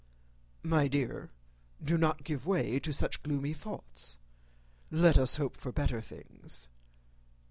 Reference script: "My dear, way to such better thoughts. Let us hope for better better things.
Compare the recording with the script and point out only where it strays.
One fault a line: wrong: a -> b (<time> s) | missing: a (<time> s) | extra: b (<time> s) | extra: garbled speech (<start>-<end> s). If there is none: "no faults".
extra: do not give (1.8 s)
wrong: better -> gloomy (3.2 s)
missing: better (6.0 s)